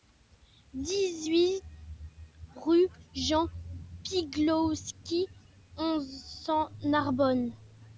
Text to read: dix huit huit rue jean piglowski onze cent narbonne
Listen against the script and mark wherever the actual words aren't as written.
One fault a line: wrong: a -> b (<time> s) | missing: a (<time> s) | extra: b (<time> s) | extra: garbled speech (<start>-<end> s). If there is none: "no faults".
missing: huit (1.6 s)